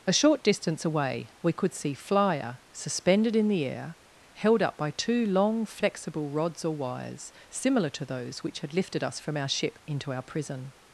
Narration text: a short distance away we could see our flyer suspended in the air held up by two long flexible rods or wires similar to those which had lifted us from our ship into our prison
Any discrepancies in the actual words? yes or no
yes